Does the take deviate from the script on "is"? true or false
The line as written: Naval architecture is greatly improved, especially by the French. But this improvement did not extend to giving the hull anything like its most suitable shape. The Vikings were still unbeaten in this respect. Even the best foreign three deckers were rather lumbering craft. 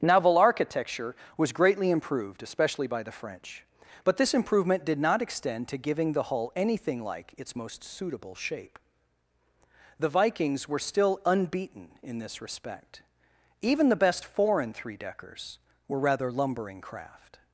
true